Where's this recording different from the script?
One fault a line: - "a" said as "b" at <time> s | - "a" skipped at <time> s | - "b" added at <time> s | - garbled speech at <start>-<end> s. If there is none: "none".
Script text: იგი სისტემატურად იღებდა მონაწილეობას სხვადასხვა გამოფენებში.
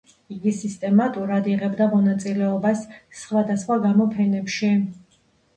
none